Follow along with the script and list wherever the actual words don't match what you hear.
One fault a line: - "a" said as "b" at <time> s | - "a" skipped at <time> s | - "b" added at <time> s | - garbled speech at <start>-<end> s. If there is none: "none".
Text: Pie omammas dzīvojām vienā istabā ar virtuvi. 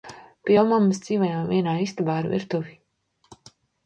none